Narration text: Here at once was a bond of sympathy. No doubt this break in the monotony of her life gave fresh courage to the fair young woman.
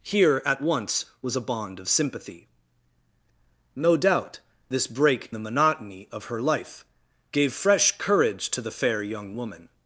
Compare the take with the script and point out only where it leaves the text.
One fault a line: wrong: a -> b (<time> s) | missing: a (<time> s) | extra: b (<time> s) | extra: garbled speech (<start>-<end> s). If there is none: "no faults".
missing: in (5.3 s)